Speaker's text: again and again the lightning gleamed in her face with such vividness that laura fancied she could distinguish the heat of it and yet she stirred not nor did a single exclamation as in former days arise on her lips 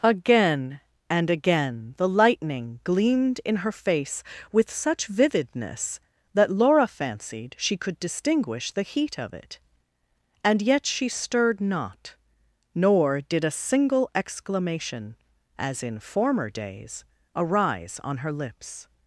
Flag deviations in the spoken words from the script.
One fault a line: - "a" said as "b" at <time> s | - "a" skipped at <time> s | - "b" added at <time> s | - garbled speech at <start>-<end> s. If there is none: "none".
none